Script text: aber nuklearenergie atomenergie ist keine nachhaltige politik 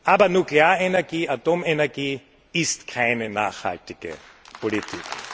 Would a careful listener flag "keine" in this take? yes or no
no